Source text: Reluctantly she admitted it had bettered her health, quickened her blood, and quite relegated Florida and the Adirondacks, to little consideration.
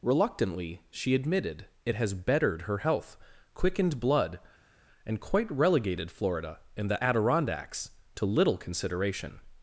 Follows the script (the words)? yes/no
no